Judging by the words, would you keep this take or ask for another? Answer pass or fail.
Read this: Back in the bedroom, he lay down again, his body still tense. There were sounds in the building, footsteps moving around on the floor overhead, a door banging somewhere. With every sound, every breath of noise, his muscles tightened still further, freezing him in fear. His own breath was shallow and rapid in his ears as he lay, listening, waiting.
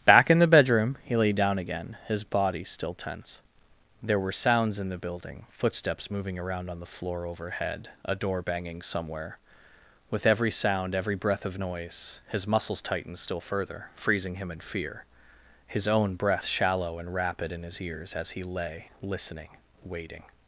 fail